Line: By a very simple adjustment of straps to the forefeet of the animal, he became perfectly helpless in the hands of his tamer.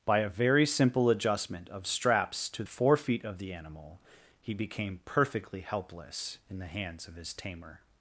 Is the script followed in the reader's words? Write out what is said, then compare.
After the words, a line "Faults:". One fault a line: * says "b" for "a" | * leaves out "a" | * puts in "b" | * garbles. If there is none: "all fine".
By a very simple adjustment of straps to forefeet of the animal, he became perfectly helpless in the hands of his tamer.
Faults:
* leaves out "the"